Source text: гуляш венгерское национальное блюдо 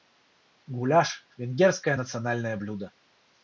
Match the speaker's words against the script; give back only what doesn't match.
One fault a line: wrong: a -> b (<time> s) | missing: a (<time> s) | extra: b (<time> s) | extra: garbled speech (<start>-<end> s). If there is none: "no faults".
no faults